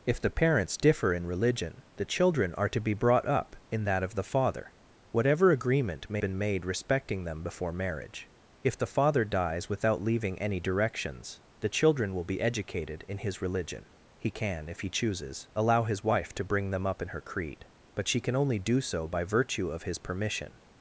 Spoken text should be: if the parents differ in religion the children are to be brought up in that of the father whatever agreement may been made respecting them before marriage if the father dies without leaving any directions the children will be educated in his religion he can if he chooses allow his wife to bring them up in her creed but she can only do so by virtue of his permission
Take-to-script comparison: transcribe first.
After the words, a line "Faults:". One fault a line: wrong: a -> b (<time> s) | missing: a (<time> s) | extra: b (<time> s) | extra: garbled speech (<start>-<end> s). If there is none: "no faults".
if the parents differ in religion the children are to be brought up in that of the father whatever agreement may been made respecting them before marriage if the father dies without leaving any directions the children will be educated in his religion he can if he chooses allow his wife to bring them up in her creed but she can only do so by virtue of his permission
Faults:
no faults